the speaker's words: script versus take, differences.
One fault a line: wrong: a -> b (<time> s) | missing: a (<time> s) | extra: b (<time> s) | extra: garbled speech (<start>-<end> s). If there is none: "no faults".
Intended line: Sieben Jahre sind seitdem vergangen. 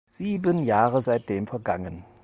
missing: sind (1.0 s)